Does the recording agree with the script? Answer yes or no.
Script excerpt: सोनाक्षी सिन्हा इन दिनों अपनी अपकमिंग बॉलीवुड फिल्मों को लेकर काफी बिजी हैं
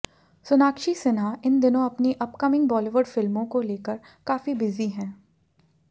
yes